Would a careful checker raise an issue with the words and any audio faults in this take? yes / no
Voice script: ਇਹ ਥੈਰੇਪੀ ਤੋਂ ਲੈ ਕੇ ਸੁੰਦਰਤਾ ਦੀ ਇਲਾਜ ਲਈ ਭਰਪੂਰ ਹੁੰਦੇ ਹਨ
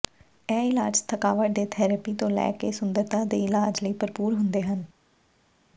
yes